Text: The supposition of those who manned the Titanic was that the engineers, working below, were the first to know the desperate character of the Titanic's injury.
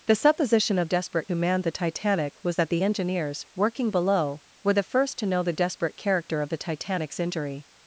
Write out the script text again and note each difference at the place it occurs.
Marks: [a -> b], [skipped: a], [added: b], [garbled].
The supposition of [those -> desperate] who manned the Titanic was that the engineers, working below, were the first to know the desperate character of the Titanic's injury.